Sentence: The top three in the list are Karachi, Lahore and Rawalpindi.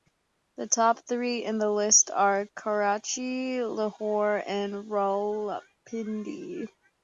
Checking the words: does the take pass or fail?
pass